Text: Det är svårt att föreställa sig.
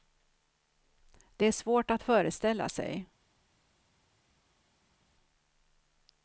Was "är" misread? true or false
false